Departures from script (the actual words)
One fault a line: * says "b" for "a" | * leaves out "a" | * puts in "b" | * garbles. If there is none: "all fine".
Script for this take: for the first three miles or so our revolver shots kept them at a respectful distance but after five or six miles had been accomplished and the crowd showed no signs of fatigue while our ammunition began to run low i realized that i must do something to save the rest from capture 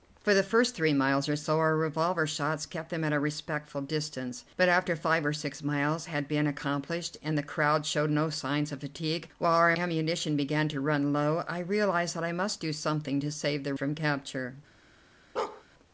* leaves out "rest"